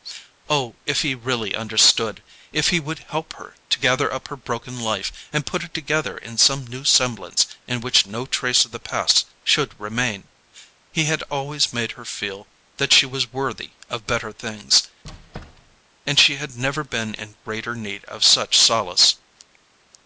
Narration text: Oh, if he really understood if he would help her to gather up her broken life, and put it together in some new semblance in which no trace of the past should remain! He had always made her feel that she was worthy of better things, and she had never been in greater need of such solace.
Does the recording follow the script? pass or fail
pass